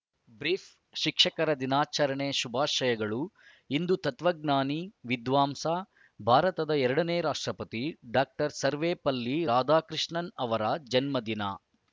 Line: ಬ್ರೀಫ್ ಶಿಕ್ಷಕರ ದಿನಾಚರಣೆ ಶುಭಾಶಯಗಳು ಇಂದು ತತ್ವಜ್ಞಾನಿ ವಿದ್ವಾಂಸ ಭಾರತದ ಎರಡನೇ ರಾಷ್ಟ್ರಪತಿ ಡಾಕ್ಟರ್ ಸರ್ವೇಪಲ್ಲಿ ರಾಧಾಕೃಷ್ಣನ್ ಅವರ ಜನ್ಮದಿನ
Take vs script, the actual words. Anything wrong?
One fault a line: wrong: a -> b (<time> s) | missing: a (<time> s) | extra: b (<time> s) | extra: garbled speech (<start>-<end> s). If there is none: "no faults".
no faults